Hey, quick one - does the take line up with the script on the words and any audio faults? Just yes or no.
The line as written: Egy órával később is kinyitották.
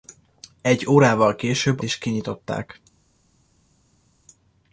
yes